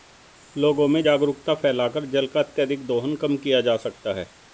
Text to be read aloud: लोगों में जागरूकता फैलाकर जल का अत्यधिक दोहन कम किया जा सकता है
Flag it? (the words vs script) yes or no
no